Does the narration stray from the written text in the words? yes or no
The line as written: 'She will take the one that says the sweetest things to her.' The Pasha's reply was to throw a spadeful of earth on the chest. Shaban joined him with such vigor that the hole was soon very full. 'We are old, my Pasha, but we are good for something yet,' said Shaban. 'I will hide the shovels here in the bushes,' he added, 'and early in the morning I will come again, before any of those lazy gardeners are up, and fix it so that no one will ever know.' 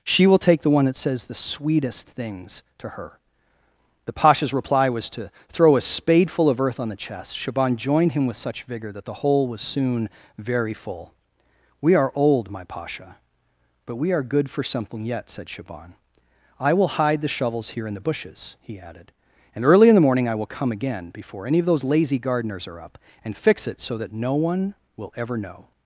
no